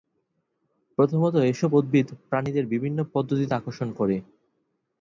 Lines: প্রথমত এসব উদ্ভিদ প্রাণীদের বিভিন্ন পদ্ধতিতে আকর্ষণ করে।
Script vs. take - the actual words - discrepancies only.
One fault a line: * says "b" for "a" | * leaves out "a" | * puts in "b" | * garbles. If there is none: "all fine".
all fine